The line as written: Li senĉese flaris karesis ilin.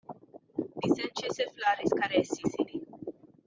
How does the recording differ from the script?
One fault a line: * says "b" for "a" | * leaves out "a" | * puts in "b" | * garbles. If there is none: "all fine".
all fine